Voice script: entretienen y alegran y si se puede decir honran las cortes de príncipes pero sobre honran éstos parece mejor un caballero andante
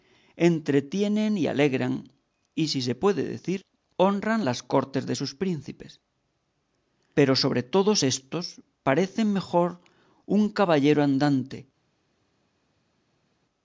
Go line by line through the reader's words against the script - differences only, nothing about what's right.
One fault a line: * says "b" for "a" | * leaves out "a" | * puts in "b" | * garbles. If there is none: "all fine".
* puts in "sus"
* says "todos" for "honran"